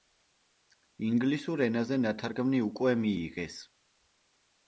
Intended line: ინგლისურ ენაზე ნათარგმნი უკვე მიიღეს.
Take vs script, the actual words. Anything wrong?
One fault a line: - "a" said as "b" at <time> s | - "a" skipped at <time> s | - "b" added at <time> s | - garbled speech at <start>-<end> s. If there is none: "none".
none